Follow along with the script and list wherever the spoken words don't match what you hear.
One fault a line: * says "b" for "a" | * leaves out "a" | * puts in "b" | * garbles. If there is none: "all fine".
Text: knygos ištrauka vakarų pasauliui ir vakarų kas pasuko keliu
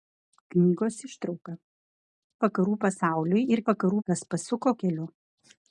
all fine